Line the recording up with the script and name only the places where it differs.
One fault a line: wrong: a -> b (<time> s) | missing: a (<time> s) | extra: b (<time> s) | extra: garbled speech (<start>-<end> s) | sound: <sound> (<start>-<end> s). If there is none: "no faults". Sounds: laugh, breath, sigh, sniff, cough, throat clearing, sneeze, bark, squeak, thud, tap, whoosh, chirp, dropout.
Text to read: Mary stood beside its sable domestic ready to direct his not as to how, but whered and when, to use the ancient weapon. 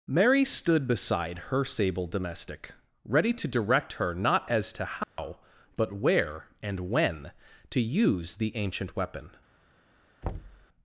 wrong: its -> her (1.5 s)
wrong: his -> her (3.9 s)
sound: dropout (5.0-5.2 s)
wrong: whered -> where (5.9 s)
sound: thud (10.2-10.7 s)